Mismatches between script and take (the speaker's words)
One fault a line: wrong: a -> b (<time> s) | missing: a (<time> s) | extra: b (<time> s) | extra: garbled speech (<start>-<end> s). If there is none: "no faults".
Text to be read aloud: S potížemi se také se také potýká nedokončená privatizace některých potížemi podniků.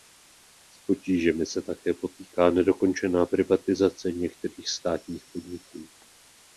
missing: se také (1.9 s)
wrong: potížemi -> státních (4.7 s)